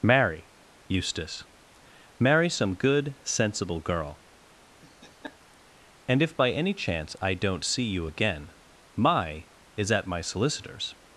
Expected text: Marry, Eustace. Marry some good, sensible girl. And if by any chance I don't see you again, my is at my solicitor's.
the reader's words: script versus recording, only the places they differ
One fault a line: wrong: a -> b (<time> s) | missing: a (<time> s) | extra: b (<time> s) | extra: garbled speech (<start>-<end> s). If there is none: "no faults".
no faults